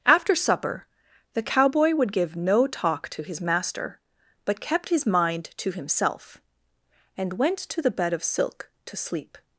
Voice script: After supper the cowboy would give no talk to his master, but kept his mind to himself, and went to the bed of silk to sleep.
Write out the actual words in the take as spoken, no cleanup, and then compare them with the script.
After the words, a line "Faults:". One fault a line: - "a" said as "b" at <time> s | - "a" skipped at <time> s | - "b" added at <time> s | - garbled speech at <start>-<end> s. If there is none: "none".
After supper the cowboy would give no talk to his master, but kept his mind to himself, and went to the bed of silk to sleep.
Faults:
none